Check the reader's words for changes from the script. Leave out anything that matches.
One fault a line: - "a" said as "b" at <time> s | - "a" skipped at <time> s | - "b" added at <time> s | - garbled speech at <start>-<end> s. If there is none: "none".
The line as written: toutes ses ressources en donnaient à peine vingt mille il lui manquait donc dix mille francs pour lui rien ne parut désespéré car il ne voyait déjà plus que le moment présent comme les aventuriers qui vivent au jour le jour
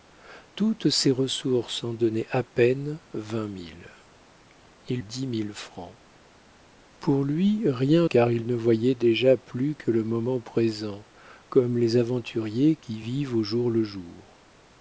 - "lui manquait donc" skipped at 5.0 s
- "ne parut désespéré" skipped at 8.1 s